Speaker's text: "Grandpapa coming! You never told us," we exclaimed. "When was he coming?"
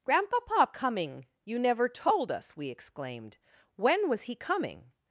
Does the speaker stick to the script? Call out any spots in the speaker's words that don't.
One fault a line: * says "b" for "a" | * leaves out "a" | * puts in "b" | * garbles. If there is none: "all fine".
all fine